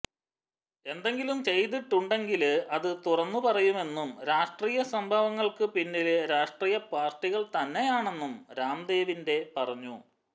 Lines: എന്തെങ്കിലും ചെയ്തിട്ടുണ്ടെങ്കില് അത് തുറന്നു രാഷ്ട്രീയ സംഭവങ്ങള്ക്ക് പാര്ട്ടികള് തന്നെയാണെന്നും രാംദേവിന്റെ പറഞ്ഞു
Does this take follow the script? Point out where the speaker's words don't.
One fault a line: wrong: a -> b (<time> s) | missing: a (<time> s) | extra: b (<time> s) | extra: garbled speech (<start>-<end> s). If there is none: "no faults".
extra: പറയുമെന്നും (3.5 s)
extra: പിന്നില് രാഷ്ട്രീയ (5.7 s)